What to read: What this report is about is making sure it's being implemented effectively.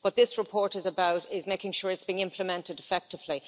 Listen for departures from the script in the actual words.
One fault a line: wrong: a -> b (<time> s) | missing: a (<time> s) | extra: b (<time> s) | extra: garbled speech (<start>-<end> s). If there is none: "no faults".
no faults